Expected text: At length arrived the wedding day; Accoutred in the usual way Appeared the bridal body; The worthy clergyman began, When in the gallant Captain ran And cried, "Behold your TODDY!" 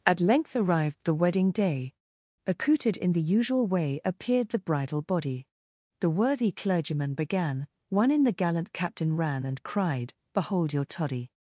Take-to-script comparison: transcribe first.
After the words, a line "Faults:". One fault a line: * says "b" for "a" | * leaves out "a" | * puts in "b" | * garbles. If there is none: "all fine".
At length arrived the wedding day; Accoutred in the usual way Appeared the bridal body; The worthy clergyman began, One in the gallant Captain ran And cried, "Behold your TODDY!"
Faults:
* says "One" for "When"